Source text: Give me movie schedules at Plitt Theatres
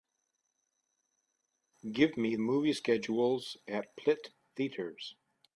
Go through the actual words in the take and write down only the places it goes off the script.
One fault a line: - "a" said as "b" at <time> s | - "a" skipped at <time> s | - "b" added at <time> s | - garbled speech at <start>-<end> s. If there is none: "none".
none